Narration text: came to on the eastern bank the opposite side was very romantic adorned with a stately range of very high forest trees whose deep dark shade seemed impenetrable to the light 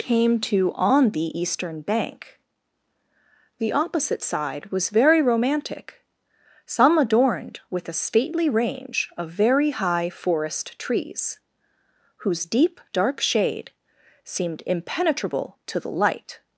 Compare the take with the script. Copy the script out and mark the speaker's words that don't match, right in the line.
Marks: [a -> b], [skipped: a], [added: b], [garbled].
came to on the eastern bank the opposite side was very romantic [added: some] adorned with a stately range of very high forest trees whose deep dark shade seemed impenetrable to the light